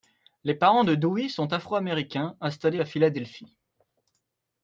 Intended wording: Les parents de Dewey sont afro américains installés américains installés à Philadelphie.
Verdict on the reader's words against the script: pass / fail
fail